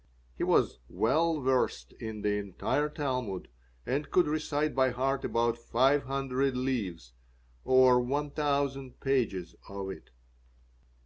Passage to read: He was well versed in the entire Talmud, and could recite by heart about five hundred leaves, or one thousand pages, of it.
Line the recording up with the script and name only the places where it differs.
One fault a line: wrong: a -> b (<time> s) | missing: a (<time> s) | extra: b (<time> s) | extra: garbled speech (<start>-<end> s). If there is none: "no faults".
no faults